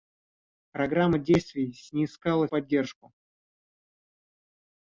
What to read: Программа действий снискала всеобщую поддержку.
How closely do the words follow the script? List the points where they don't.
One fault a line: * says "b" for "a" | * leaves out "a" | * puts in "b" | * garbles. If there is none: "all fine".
* leaves out "всеобщую"